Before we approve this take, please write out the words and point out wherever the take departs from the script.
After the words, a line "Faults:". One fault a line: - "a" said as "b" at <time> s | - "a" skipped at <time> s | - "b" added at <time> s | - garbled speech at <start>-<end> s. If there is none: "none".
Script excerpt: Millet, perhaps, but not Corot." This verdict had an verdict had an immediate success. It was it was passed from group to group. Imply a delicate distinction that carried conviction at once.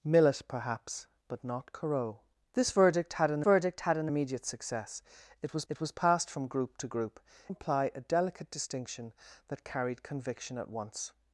Millet, perhaps, but not Corot." This verdict had an verdict had an immediate success. It was it was passed from group to group. Imply a delicate distinction that carried conviction at once.
Faults:
none